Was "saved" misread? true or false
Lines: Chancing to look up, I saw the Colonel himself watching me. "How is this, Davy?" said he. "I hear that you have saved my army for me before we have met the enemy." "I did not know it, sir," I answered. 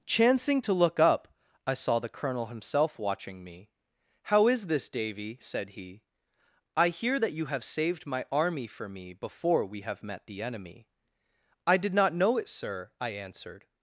false